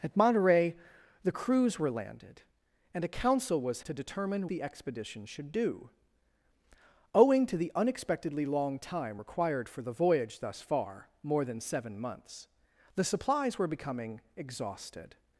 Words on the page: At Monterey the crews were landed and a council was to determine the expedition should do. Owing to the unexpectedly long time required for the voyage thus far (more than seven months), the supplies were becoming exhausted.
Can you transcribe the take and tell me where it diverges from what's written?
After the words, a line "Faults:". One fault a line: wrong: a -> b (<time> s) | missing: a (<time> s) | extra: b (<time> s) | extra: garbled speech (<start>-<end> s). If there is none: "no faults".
At Monterey the crews were landed and a council was to determine the expedition should do. Owing to the unexpectedly long time required for the voyage thus far (more than seven months), the supplies were becoming exhausted.
Faults:
no faults